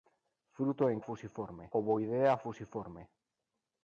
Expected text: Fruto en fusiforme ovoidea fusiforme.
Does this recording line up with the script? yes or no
yes